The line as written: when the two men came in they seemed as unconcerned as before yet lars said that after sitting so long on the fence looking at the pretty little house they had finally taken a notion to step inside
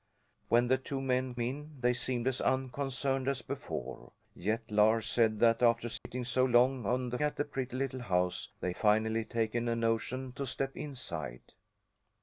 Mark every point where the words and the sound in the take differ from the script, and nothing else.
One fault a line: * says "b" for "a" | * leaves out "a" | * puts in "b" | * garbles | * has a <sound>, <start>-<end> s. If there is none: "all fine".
* leaves out "came"
* has a dropout, 6.0-6.1 s
* leaves out "fence looking"
* leaves out "had"